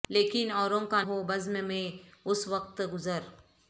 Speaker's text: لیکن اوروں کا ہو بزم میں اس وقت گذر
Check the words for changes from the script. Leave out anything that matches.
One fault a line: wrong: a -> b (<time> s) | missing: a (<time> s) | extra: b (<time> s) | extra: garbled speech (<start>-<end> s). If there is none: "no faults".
no faults